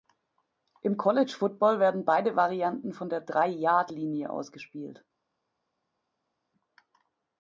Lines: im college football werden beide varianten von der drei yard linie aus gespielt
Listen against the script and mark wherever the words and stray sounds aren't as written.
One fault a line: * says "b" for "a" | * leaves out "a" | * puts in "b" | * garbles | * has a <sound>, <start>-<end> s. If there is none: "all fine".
all fine